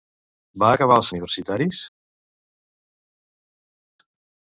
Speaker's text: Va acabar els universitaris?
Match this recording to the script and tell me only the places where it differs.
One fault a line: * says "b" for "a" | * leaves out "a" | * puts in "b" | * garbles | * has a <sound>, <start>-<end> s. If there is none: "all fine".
all fine